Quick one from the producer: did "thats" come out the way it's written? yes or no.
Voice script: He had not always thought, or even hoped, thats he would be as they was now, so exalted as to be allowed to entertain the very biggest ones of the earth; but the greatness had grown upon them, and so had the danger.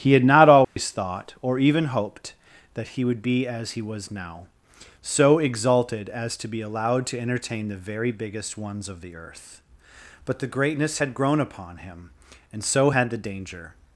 no